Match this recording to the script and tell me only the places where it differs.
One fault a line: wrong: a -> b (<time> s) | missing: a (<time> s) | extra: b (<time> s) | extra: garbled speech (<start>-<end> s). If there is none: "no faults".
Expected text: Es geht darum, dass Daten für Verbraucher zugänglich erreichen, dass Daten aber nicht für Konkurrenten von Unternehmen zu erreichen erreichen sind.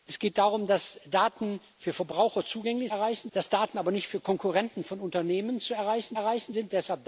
no faults